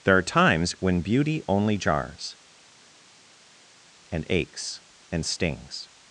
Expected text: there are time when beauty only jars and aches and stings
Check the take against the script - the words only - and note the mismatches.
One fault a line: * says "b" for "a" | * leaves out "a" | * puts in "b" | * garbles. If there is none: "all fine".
* says "times" for "time"